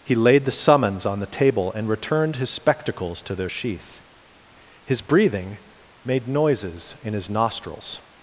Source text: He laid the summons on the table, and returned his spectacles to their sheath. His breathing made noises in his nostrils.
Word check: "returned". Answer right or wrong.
right